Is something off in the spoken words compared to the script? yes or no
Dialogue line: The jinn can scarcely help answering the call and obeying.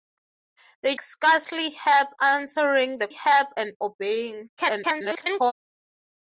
yes